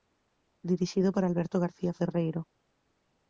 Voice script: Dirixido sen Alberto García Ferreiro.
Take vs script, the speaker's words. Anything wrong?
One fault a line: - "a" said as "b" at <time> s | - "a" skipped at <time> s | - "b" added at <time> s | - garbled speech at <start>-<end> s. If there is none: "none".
- "sen" said as "por" at 1.1 s